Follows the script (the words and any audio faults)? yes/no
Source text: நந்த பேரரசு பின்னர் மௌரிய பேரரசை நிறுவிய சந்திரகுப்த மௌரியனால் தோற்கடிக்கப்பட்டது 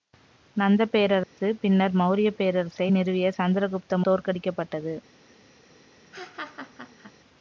no